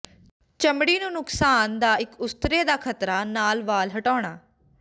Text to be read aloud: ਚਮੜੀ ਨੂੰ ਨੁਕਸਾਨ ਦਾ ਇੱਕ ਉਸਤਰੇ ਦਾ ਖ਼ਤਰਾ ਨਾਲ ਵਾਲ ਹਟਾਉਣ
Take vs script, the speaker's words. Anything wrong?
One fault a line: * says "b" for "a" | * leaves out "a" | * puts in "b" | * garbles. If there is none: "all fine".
all fine